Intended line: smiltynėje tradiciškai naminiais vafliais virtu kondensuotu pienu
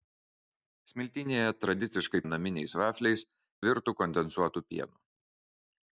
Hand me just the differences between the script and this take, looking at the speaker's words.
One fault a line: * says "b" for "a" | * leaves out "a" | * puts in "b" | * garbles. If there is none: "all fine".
all fine